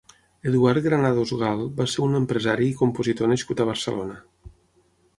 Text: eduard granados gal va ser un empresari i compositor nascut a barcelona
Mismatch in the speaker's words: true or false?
false